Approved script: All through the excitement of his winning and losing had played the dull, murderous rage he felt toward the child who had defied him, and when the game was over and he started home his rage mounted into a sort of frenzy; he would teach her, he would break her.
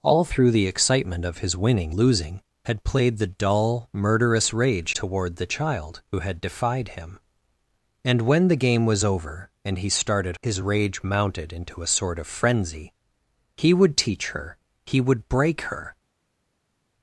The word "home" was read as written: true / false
false